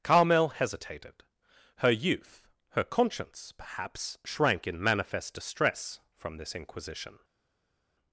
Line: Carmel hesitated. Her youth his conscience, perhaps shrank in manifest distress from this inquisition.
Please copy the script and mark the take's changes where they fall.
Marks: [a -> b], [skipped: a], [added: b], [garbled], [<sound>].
Carmel hesitated. Her youth [his -> her] conscience, perhaps shrank in manifest distress from this inquisition.